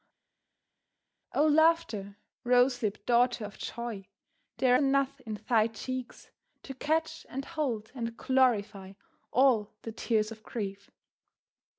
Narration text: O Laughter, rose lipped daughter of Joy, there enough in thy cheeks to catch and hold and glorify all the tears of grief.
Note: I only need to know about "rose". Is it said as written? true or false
true